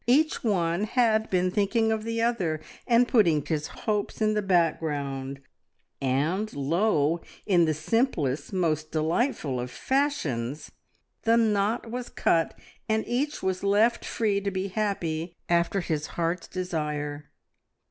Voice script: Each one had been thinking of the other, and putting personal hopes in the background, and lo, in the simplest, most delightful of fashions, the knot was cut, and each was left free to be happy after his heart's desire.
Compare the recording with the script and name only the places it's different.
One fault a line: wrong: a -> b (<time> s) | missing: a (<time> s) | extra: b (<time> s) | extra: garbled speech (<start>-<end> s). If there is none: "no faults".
wrong: personal -> his (3.4 s)